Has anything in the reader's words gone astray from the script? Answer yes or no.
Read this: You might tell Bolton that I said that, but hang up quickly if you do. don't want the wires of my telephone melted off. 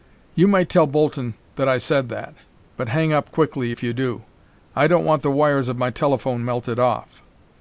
yes